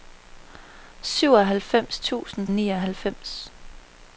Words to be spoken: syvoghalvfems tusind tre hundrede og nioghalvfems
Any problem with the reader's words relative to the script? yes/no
yes